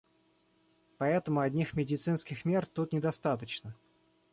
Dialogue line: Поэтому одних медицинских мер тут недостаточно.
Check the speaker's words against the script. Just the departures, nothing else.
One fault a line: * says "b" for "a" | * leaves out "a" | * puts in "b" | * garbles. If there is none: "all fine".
all fine